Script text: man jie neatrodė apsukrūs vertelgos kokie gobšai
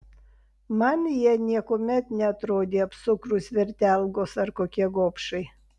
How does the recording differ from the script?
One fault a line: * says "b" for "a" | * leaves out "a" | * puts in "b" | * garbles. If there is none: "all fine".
* puts in "niekuomet"
* puts in "ar"